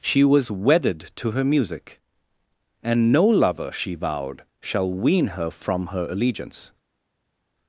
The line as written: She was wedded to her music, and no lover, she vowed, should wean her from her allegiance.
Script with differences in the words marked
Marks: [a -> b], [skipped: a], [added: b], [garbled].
She was wedded to her music, and no lover, she vowed, [should -> shall] wean her from her allegiance.